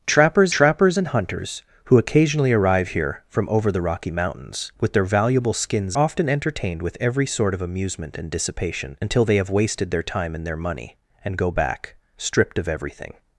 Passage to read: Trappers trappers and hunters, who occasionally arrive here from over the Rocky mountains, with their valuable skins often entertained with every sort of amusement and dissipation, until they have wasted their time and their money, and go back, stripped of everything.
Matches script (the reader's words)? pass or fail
pass